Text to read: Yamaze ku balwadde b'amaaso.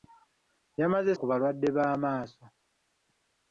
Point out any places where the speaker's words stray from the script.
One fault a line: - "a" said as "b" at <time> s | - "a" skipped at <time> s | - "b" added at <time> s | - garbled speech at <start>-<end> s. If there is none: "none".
none